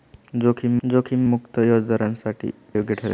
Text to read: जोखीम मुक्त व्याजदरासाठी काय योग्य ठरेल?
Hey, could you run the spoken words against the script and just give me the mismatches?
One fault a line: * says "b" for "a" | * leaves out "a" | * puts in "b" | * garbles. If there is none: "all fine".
* puts in "जोखीम"
* leaves out "काय"